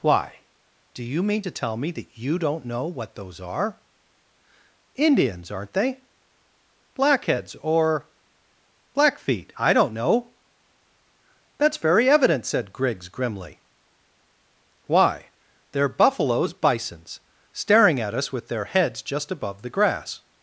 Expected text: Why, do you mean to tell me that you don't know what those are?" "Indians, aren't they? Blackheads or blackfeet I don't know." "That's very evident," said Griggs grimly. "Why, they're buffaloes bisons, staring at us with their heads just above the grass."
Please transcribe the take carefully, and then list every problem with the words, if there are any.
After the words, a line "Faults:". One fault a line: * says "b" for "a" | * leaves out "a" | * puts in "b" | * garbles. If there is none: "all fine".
Why, do you mean to tell me that you don't know what those are?" "Indians, aren't they? Blackheads or blackfeet I don't know." "That's very evident," said Griggs grimly. "Why, they're buffaloes bisons, staring at us with their heads just above the grass."
Faults:
all fine